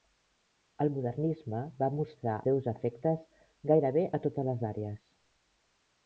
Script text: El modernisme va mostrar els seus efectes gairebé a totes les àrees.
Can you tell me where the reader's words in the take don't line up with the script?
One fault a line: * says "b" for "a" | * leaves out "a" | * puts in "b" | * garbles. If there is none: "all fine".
* leaves out "els"